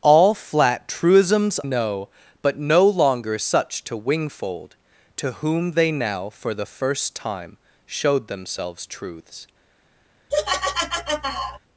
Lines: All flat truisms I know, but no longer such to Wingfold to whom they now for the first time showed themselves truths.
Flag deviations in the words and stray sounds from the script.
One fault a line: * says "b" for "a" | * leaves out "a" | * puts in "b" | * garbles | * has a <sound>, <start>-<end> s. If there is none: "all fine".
* leaves out "I"
* has a laugh, 10.3-11.6 s